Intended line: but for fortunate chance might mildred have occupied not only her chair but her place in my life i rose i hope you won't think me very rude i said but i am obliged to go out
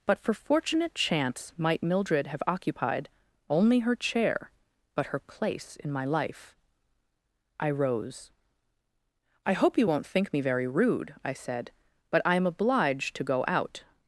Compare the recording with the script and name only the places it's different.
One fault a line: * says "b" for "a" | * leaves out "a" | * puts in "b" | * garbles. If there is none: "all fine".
* leaves out "not"